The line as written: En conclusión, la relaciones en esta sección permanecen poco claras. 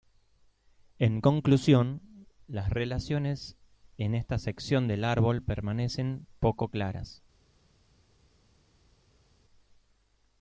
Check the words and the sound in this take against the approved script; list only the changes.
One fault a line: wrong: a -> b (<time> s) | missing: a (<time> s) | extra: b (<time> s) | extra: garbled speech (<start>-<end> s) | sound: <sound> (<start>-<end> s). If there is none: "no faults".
wrong: la -> las (2.5 s)
extra: del árbol (4.9 s)